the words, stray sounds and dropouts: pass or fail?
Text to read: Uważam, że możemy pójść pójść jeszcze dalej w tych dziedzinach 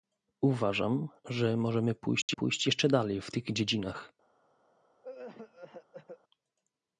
fail